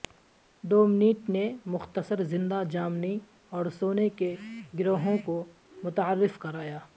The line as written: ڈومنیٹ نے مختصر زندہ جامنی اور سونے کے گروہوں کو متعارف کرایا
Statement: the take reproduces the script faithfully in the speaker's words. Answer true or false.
true